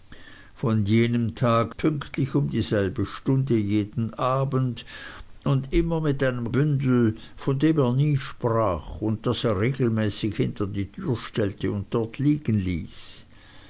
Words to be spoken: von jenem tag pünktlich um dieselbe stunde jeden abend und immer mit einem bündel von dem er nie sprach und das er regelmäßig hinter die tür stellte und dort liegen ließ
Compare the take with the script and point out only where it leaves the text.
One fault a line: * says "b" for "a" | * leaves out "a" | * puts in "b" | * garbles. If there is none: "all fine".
all fine